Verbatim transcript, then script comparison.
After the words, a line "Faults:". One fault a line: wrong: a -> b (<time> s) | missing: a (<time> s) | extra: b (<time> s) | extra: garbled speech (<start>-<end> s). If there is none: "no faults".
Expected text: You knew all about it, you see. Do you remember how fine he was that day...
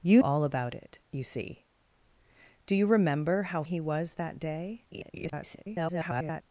You all about it, you see. Do you remember how he was that day... [garbled]
Faults:
missing: knew (0.2 s)
missing: fine (3.6 s)
extra: garbled speech (4.9-6.4 s)